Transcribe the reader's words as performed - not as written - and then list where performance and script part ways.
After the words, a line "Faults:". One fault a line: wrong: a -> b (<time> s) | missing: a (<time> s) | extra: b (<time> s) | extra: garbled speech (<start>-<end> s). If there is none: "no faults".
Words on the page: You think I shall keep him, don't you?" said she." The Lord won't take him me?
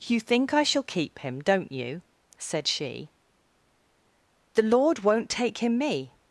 You think I shall keep him, don't you?" said she." The Lord won't take him me?
Faults:
no faults